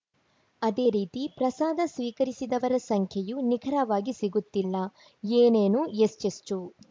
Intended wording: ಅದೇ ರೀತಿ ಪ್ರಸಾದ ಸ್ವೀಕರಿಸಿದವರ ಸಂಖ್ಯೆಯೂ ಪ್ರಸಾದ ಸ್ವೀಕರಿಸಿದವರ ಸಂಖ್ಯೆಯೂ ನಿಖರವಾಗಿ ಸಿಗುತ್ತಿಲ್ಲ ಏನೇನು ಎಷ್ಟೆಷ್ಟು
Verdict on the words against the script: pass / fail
fail